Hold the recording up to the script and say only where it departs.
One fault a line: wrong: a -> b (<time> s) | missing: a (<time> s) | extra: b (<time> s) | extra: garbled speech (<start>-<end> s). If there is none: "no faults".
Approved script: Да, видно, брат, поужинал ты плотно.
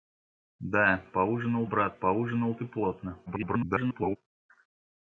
wrong: видно -> поужинал (1.1 s)
extra: garbled speech (3.3-4.2 s)